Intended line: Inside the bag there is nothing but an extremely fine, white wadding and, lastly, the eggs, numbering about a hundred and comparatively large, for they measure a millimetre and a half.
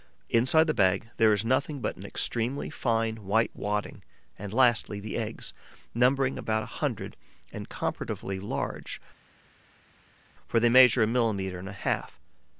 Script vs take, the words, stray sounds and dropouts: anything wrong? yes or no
no